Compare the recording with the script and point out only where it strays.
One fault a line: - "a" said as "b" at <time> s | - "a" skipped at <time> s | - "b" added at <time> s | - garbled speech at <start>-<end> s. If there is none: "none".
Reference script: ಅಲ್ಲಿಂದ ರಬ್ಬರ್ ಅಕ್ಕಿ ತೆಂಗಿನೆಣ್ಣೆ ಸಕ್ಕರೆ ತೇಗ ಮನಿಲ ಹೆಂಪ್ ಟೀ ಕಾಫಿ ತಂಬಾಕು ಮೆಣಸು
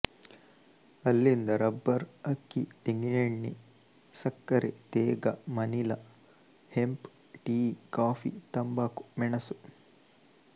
none